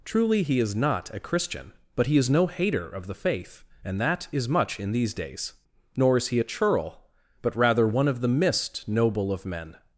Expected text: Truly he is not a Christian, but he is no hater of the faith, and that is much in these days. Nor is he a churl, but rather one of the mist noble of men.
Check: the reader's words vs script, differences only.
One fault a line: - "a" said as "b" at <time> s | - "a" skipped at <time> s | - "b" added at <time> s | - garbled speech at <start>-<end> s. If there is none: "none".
none